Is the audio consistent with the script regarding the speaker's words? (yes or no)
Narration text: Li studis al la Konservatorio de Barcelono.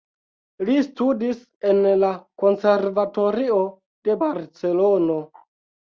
no